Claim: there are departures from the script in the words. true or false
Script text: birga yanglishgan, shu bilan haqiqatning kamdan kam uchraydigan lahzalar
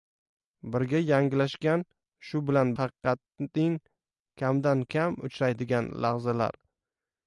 false